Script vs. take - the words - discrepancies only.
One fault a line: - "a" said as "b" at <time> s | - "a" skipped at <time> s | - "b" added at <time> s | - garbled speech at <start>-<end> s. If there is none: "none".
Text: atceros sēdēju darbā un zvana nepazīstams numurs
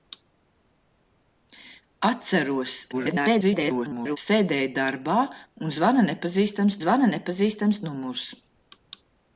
- garbled speech at 2.9-4.2 s
- "zvana nepazīstams" added at 6.8 s